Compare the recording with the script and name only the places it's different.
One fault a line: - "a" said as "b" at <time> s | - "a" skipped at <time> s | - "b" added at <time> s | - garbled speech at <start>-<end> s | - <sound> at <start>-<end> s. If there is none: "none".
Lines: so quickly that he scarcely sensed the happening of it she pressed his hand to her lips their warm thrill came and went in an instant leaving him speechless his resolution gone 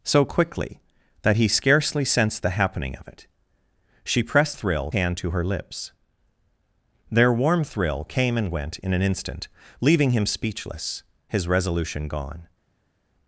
- "his" said as "thrill" at 4.5 s